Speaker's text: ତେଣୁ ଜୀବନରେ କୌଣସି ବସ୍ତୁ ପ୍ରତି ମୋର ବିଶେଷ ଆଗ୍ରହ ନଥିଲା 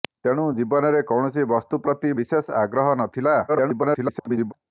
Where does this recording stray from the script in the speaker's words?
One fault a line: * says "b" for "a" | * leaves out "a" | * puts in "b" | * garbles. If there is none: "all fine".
* leaves out "ମୋର"
* garbles